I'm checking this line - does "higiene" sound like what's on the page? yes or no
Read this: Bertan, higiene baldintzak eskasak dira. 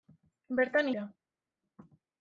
no